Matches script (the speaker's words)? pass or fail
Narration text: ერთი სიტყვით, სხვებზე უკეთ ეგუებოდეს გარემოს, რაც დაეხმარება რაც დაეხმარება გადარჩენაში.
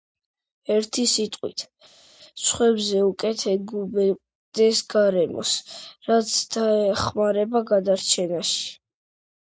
fail